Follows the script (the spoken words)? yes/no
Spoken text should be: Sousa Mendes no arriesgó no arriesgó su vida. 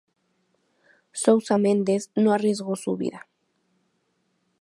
no